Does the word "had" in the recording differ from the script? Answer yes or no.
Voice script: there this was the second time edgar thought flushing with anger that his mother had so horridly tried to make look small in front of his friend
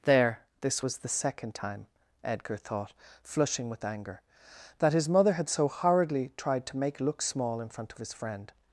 no